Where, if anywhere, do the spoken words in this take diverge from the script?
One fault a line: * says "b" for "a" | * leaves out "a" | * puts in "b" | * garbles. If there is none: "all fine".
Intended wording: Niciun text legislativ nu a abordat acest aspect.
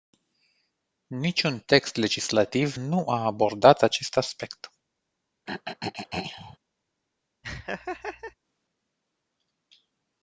all fine